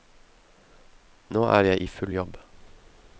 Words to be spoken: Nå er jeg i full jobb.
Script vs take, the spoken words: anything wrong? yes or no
no